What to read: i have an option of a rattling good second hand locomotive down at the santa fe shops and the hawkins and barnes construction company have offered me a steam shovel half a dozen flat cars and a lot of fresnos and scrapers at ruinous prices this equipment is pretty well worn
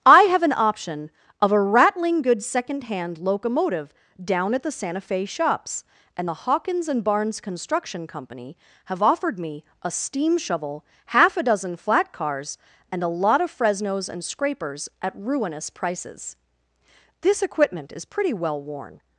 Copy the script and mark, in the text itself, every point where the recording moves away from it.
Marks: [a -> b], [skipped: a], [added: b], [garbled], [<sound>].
i have an option of a rattling good second hand locomotive down at the santa fe shops and the hawkins and barnes construction company have offered me a steam shovel half a dozen flat cars and a lot of fresnos and scrapers at ruinous prices this equipment is pretty well worn